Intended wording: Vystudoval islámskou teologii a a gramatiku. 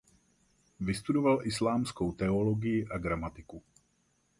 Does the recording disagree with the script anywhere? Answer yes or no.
yes